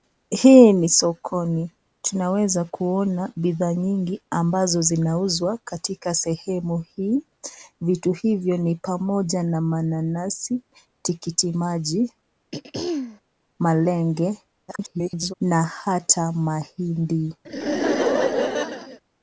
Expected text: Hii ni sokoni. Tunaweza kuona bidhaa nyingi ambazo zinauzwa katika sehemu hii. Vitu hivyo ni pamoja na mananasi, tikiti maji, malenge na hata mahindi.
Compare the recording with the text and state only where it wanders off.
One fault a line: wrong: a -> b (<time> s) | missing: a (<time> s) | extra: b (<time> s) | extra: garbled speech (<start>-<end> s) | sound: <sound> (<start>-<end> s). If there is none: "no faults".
sound: throat clearing (12.5-13.2 s)
extra: garbled speech (14.7-15.3 s)
sound: laugh (17.4-19.0 s)